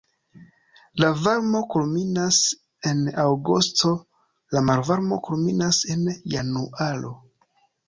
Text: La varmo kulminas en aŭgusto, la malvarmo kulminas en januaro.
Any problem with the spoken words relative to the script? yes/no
no